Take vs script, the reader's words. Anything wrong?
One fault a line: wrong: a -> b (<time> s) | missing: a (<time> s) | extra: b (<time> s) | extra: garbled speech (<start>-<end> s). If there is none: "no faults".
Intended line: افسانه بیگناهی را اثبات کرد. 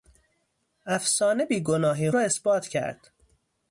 no faults